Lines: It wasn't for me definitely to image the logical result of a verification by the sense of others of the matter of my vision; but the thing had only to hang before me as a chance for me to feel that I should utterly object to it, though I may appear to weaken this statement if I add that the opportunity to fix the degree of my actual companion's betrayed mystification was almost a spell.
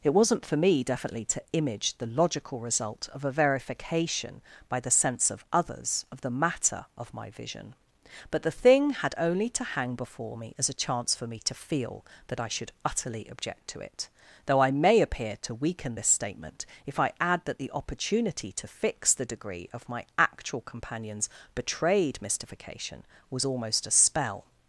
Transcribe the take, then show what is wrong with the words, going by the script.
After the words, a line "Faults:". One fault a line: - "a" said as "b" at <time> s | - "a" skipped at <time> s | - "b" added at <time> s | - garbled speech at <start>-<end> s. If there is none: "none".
It wasn't for me definitely to image the logical result of a verification by the sense of others of the matter of my vision; but the thing had only to hang before me as a chance for me to feel that I should utterly object to it, though I may appear to weaken this statement if I add that the opportunity to fix the degree of my actual companion's betrayed mystification was almost a spell.
Faults:
none